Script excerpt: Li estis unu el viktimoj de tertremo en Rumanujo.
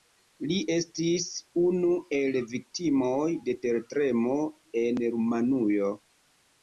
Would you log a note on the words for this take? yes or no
no